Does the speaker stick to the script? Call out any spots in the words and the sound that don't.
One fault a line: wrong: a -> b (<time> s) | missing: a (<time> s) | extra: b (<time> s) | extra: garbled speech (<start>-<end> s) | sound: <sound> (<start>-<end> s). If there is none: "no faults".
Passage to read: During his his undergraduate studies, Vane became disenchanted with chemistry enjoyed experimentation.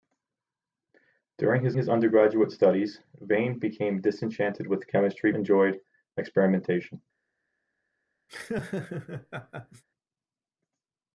sound: laugh (8.3-9.8 s)